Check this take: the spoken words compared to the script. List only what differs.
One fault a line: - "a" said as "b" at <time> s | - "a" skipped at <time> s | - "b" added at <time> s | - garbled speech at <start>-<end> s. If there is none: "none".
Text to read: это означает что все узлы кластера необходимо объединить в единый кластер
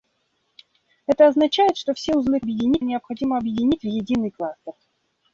- "кластера" said as "объединить" at 2.4 s